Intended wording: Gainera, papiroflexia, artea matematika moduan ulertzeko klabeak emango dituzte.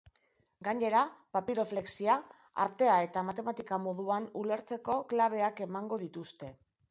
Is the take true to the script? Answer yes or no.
no